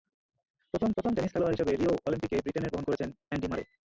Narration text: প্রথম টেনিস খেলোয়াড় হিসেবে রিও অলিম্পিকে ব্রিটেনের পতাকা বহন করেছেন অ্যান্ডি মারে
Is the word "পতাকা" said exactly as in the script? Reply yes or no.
no